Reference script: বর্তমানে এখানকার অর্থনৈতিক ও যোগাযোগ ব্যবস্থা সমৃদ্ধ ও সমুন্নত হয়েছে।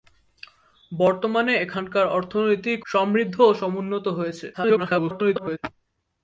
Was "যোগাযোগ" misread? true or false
true